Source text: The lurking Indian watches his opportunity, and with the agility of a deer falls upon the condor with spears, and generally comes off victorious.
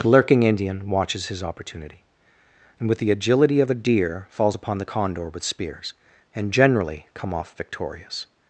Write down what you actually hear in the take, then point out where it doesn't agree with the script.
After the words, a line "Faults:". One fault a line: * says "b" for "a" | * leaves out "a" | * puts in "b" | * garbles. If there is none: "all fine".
The lurking Indian watches his opportunity, and with the agility of a deer falls upon the condor with spears, and generally come off victorious.
Faults:
* says "come" for "comes"